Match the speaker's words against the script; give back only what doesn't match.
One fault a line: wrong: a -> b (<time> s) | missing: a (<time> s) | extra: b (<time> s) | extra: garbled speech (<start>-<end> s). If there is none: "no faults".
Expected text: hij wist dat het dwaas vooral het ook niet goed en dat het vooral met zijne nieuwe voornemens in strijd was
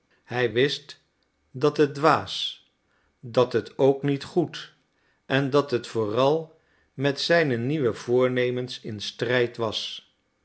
wrong: vooral -> dat (3.2 s)